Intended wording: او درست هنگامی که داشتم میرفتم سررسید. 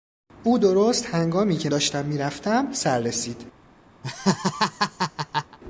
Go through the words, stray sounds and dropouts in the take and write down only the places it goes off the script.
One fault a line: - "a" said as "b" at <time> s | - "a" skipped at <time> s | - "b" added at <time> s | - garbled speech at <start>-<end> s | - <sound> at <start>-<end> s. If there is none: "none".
- laugh at 4.0-5.6 s